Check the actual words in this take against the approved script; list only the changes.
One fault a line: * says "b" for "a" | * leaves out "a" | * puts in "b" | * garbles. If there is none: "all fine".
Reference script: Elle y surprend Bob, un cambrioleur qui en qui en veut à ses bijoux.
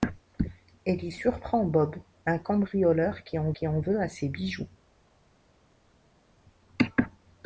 all fine